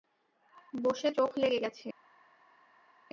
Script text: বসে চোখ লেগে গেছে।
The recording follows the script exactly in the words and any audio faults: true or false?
true